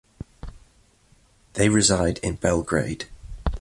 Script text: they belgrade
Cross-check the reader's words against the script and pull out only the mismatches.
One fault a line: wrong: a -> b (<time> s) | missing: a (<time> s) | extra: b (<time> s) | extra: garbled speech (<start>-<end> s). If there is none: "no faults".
extra: reside in (1.7 s)